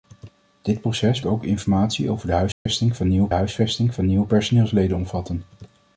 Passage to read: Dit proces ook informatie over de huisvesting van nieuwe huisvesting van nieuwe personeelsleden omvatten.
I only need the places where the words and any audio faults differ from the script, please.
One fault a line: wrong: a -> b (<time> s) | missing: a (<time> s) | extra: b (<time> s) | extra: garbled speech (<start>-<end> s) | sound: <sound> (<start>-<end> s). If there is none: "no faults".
sound: dropout (2.5-2.7 s)